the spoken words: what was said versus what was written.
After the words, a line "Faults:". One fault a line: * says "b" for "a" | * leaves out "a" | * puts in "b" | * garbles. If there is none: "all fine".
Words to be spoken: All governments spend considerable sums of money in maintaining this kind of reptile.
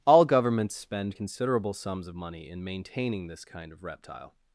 All governments spend considerable sums of money in maintaining this kind of reptile.
Faults:
all fine